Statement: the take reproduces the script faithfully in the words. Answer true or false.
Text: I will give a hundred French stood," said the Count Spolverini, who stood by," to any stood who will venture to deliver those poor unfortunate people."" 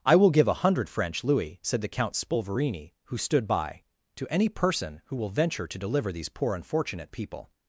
false